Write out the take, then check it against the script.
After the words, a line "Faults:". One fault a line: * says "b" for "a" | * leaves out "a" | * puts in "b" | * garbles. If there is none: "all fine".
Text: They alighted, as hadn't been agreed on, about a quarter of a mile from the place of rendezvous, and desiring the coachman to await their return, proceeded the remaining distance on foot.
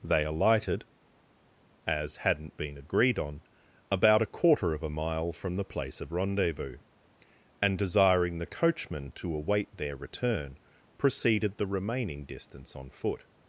They alighted, as hadn't been agreed on, about a quarter of a mile from the place of rendezvous, and desiring the coachman to await their return, proceeded the remaining distance on foot.
Faults:
all fine